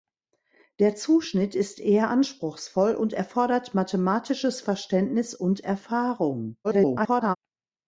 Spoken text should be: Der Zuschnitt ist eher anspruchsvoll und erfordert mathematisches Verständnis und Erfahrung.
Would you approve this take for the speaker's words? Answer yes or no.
no